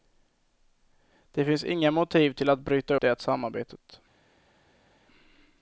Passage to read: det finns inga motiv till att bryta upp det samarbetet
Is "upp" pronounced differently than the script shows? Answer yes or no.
yes